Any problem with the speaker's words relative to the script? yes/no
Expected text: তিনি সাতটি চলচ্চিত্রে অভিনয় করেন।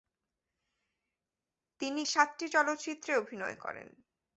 no